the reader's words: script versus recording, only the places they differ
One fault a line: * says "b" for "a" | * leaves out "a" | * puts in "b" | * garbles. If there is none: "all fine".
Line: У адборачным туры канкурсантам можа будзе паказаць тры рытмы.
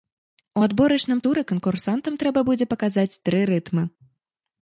* says "трэба" for "можа"